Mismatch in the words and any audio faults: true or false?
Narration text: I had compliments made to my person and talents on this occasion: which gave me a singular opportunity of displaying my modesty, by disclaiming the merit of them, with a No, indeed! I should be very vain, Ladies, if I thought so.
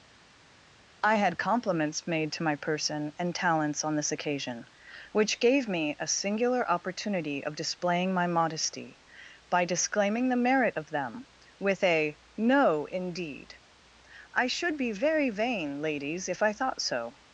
false